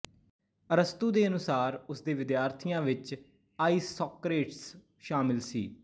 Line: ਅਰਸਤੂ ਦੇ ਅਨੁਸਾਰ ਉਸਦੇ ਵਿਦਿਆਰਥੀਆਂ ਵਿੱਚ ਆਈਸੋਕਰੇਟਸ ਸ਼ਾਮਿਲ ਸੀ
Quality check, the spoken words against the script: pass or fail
pass